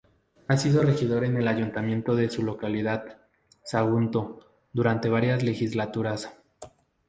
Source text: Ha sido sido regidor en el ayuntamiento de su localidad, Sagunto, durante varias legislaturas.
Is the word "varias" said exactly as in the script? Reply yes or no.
yes